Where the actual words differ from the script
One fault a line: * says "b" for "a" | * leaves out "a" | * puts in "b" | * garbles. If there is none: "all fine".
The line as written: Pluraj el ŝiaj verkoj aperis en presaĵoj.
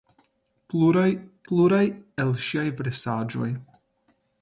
* puts in "pluraj"
* leaves out "verkoj aperis en"